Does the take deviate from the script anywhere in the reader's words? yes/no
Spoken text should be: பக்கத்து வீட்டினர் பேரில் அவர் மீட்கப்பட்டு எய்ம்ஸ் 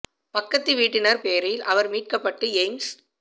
no